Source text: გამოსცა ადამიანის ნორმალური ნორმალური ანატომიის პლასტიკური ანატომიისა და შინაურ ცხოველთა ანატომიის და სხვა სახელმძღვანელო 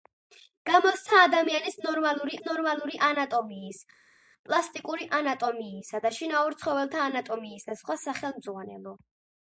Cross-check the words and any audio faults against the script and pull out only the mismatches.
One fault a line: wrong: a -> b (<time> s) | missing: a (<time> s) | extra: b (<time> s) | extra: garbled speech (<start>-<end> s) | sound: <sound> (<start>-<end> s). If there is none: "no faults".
no faults